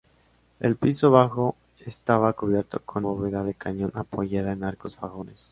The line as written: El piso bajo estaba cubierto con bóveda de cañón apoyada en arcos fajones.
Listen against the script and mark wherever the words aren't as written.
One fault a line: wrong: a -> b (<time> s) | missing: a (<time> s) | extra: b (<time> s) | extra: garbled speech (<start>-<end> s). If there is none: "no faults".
no faults